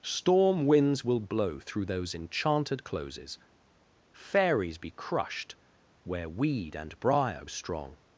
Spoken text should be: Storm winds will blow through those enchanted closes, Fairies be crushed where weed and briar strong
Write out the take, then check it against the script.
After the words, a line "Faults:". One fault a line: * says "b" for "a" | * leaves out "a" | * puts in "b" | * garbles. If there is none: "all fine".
Storm winds will blow through those enchanted closes, Fairies be crushed where weed and briar strong
Faults:
all fine